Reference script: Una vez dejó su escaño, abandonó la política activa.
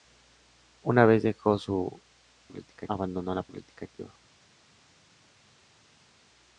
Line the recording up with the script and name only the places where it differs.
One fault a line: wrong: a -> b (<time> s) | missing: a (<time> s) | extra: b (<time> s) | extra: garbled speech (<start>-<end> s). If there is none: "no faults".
wrong: escaño -> política (2.4 s)